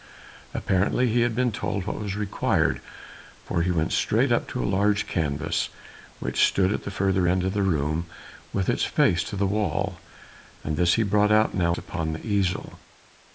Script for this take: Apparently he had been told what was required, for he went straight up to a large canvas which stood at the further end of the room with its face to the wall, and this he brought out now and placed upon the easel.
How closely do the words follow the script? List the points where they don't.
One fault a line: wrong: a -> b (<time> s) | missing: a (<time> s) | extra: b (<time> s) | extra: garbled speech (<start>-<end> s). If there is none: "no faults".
missing: and placed (11.8 s)